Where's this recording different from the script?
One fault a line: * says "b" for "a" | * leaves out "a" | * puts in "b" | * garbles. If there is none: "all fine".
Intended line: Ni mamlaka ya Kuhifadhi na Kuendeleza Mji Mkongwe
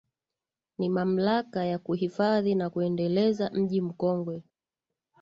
all fine